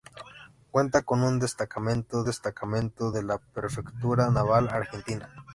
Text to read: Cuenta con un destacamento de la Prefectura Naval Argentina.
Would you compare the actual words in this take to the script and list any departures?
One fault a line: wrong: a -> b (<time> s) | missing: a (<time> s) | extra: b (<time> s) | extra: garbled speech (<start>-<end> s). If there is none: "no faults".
extra: destacamento (2.2 s)